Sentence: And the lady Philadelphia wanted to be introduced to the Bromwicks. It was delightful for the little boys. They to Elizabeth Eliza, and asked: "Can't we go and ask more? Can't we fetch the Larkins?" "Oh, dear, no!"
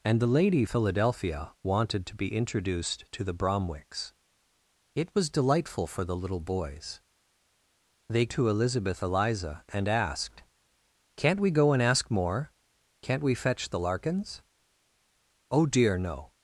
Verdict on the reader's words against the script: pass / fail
pass